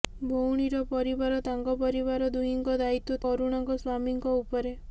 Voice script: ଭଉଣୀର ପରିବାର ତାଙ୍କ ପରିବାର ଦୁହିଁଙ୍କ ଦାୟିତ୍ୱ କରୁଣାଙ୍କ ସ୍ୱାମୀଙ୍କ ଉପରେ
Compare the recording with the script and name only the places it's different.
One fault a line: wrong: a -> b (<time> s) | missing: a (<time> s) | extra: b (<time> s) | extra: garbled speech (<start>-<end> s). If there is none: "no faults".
no faults